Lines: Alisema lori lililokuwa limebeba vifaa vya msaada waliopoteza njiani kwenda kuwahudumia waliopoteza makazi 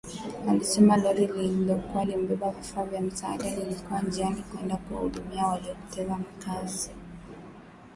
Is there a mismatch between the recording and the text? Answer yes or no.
yes